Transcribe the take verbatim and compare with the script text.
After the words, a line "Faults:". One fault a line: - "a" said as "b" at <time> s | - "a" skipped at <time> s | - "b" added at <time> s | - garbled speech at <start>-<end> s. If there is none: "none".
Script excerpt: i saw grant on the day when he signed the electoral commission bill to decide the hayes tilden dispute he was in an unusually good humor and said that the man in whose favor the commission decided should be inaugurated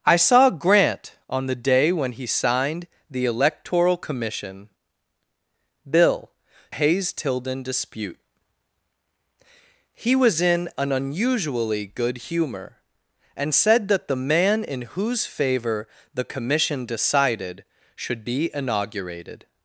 i saw grant on the day when he signed the electoral commission bill hayes tilden dispute he was in an unusually good humor and said that the man in whose favor the commission decided should be inaugurated
Faults:
- "to decide the" skipped at 6.3 s